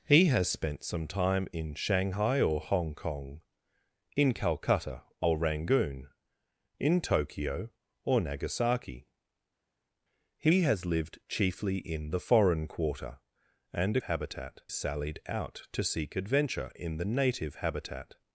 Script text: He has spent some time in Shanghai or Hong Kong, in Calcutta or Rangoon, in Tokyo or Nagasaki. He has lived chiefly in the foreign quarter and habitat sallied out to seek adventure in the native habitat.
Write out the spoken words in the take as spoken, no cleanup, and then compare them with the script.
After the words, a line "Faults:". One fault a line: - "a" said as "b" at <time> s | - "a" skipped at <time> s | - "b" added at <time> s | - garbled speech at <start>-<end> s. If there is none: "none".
He has spent some time in Shanghai or Hong Kong, in Calcutta or Rangoon, in Tokyo or Nagasaki. He has lived chiefly in the foreign quarter and habitat sallied out to seek adventure in the native habitat.
Faults:
none